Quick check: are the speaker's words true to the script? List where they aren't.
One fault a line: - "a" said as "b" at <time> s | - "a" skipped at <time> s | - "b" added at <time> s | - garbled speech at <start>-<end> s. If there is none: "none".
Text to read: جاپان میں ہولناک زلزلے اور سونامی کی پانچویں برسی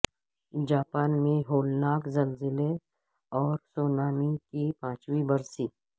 none